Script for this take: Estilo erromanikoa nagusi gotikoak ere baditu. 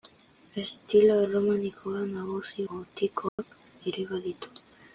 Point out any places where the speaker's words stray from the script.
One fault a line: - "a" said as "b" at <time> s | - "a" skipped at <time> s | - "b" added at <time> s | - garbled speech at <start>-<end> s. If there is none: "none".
none